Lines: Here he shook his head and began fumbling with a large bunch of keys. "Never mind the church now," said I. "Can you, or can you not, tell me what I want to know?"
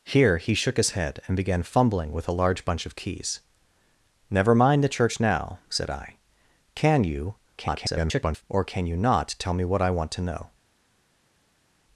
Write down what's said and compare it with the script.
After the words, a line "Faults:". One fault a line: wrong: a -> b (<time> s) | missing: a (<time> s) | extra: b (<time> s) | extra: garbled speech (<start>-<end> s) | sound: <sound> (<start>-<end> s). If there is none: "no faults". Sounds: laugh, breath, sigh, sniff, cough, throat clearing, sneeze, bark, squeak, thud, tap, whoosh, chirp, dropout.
Here he shook his head and began fumbling with a large bunch of keys. "Never mind the church now," said I. "Can you, [garbled] or can you not, tell me what I want to know?"
Faults:
extra: garbled speech (7.6-8.4 s)